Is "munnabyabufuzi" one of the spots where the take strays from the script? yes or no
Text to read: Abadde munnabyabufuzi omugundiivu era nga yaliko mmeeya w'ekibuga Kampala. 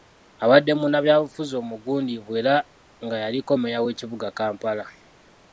no